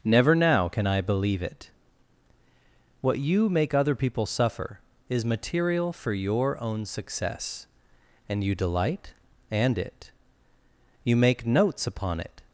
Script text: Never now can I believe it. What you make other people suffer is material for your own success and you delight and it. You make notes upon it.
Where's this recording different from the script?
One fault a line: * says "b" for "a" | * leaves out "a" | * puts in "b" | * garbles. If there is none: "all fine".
all fine